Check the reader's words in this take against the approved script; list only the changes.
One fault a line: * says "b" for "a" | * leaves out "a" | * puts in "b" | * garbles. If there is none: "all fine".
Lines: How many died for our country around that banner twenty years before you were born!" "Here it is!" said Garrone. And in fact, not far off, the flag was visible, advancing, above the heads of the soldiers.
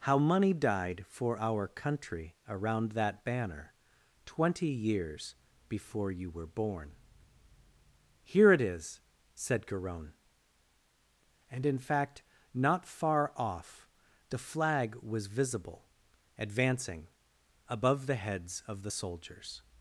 * says "money" for "many"